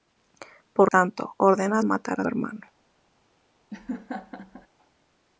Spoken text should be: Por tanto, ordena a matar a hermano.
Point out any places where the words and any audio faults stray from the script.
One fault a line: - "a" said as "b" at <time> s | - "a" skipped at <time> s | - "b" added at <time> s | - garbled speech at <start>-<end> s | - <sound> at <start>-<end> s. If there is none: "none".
- laugh at 3.7-4.7 s